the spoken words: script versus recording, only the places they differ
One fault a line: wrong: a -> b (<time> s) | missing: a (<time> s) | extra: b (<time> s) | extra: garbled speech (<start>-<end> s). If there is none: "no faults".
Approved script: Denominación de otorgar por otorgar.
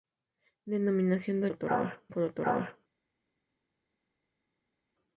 no faults